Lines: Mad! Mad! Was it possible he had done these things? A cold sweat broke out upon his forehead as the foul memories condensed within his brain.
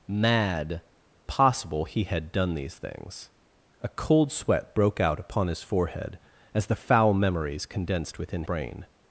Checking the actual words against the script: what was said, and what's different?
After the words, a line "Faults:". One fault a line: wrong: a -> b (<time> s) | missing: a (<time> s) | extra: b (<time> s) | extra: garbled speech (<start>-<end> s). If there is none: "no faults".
Mad! Possible he had done these things? A cold sweat broke out upon his forehead as the foul memories condensed within brain.
Faults:
missing: Mad Was it (0.8 s)
missing: his (8.4 s)